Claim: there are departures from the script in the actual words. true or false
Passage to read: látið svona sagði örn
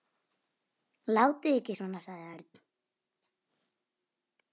true